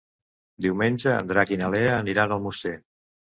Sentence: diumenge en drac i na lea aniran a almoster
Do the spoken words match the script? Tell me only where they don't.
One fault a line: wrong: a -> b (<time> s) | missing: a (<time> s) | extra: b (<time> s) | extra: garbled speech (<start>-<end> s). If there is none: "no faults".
no faults